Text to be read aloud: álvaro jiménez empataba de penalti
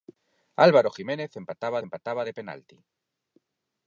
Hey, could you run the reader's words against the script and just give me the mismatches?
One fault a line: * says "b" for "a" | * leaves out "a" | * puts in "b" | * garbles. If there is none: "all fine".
* puts in "empataba"